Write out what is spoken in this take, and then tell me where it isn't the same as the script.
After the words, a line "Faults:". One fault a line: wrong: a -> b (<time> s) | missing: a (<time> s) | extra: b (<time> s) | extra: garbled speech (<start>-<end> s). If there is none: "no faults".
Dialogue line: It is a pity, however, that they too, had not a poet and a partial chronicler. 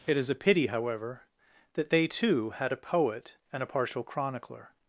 It is a pity, however, that they too, had a poet and a partial chronicler.
Faults:
missing: not (2.7 s)